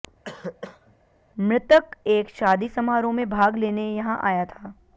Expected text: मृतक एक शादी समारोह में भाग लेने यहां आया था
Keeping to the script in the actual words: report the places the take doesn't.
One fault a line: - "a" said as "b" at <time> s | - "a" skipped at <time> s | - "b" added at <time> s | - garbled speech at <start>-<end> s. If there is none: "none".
none